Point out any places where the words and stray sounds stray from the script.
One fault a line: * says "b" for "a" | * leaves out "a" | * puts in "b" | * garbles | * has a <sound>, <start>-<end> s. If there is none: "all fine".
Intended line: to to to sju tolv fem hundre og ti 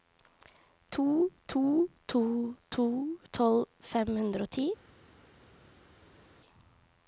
* says "to" for "sju"